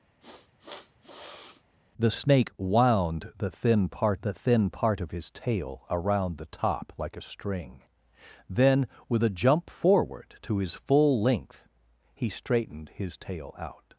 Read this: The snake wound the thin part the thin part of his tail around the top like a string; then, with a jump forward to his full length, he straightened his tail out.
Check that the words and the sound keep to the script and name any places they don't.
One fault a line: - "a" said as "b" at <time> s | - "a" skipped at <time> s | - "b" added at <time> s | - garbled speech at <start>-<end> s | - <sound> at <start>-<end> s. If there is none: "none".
- sniff at 0.2-1.6 s